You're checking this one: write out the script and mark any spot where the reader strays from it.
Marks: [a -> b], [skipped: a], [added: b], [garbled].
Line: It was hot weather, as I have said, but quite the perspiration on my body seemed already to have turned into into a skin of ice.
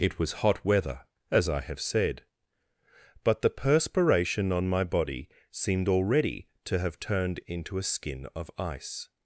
It was hot weather, as I have said, but [skipped: quite] the perspiration on my body seemed already to have turned into [skipped: into] a skin of ice.